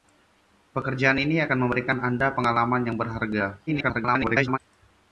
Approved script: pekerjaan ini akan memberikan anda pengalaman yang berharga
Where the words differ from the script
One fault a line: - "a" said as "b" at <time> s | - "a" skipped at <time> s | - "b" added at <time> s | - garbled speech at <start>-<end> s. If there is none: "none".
- garbled speech at 3.7-4.6 s